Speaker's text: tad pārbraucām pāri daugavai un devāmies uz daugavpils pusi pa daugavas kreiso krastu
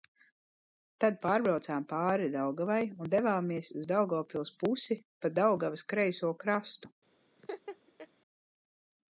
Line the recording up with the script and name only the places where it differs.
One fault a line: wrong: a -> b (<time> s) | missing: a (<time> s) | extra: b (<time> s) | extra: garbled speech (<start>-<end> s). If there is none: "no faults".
no faults